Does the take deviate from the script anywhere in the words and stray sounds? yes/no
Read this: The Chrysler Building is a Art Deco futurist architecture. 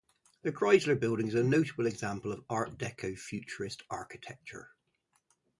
yes